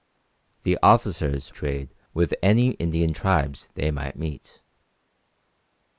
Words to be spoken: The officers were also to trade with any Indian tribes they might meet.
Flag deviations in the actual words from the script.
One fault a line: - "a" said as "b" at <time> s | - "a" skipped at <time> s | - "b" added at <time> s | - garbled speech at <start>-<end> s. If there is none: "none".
- "were also to" skipped at 1.5 s